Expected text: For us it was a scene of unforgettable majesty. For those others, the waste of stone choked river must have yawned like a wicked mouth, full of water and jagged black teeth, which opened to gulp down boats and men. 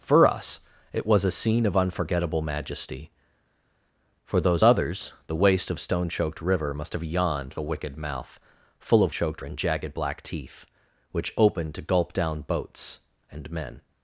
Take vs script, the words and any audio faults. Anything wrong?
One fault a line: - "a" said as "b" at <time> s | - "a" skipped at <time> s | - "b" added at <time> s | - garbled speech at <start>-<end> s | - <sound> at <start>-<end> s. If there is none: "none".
- "like" skipped at 7.5 s
- "water" said as "choked" at 9.1 s